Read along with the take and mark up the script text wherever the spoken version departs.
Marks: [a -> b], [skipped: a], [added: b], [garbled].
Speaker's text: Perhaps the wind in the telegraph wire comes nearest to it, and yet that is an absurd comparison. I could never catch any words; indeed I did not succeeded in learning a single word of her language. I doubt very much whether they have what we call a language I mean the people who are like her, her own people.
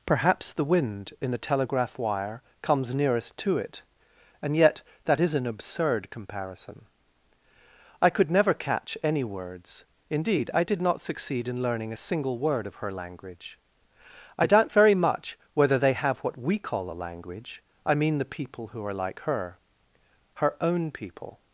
Perhaps the wind in the telegraph wire comes nearest to it, and yet that is an absurd comparison. I could never catch any words; indeed I did not [succeeded -> succeed] in learning a single word of her language. I doubt very much whether they have what we call a language I mean the people who are like her, her own people.